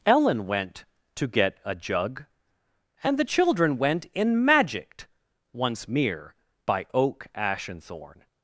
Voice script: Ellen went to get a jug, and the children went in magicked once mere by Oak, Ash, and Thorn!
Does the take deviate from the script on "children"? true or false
false